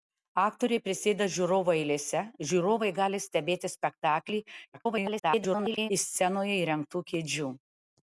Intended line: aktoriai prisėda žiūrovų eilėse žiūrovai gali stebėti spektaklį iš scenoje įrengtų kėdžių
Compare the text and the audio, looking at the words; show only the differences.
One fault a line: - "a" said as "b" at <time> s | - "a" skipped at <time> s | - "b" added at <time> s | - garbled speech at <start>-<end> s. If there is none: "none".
- garbled speech at 4.7-5.9 s